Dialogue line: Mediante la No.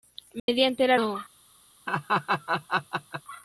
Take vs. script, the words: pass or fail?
pass